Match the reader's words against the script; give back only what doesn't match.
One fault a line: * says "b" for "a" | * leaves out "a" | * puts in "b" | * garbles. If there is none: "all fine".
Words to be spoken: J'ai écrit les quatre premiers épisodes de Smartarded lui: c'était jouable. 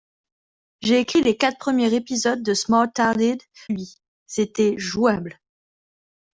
all fine